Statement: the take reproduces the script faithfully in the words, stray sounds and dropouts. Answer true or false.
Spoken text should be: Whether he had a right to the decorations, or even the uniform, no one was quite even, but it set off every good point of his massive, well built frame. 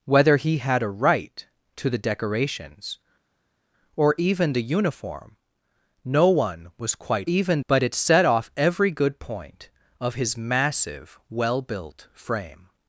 true